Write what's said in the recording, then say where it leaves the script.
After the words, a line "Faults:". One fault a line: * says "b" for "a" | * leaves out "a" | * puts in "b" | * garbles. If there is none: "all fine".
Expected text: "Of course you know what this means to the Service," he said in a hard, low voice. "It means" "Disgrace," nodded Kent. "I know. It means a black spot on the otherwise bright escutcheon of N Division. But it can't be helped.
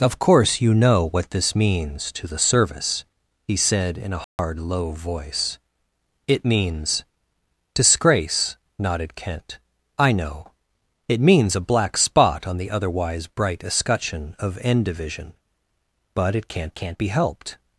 "Of course you know what this means to the Service," he said in a hard, low voice. "It means" "Disgrace," nodded Kent. "I know. It means a black spot on the otherwise bright escutcheon of N Division. But it can't can't be helped.
Faults:
* puts in "can't"